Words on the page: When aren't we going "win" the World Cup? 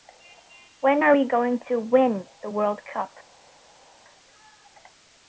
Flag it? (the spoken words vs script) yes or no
yes